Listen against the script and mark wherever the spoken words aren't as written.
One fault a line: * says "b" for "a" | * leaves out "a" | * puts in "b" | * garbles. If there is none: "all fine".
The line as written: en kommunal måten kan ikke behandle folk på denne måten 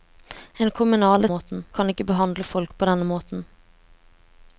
all fine